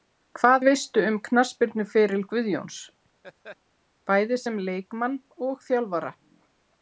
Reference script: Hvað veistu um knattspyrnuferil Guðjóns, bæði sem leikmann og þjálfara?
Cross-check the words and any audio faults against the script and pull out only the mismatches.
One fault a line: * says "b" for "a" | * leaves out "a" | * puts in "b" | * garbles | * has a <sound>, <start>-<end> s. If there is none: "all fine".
* has a laugh, 3.2-3.6 s